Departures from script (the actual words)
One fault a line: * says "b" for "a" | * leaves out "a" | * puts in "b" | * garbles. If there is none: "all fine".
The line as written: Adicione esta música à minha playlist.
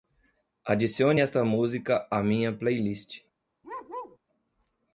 all fine